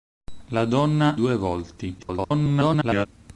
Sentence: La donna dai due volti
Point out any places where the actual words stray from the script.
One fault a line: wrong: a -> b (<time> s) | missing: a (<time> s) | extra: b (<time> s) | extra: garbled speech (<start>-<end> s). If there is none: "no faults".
missing: dai (1.1 s)
extra: garbled speech (2.0-3.1 s)